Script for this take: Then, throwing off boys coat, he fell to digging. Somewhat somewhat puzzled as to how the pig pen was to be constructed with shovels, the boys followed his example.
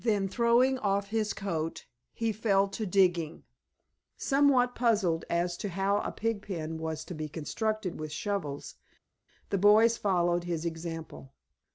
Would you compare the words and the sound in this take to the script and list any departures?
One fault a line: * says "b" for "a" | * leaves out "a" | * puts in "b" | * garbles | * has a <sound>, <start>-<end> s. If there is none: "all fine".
* says "his" for "boys"
* leaves out "somewhat"
* says "a" for "the"